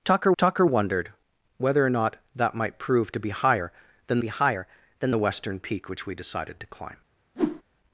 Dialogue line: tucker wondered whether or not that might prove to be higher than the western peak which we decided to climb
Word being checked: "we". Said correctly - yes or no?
yes